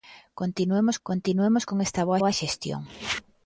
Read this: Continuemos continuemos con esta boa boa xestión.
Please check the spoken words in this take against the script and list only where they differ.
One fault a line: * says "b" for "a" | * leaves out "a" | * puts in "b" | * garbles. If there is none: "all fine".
all fine